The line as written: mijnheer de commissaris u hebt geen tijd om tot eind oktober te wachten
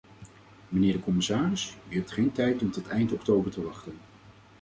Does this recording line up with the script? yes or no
yes